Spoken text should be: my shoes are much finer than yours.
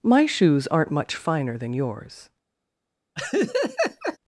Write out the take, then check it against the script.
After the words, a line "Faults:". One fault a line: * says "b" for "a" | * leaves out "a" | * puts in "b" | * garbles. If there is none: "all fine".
my shoes aren't much finer than yours.
Faults:
* says "aren't" for "are"